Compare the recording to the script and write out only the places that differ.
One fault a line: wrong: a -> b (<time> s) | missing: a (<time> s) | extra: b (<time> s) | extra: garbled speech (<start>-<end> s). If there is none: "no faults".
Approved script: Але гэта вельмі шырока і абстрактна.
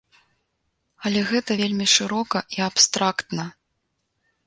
no faults